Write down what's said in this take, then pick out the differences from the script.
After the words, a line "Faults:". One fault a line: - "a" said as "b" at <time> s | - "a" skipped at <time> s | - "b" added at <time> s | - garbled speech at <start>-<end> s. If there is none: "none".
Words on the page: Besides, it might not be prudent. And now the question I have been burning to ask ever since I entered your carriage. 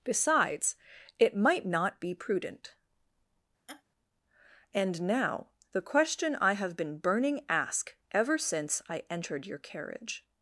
Besides, it might not be prudent. And now the question I have been burning ask ever since I entered your carriage.
Faults:
- "to" skipped at 7.4 s